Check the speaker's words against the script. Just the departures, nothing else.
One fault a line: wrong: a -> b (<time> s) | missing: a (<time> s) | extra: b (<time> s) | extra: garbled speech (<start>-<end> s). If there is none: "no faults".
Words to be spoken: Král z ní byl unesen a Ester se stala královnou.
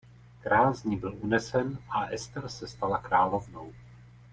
no faults